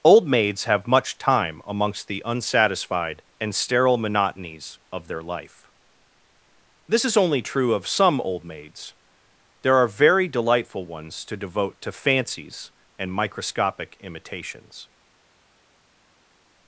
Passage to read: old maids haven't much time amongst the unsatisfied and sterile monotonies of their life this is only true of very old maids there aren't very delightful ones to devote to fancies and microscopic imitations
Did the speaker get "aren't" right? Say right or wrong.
wrong